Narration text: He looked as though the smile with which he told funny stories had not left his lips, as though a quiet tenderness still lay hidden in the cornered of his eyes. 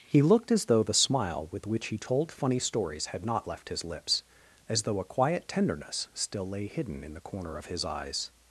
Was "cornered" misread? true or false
true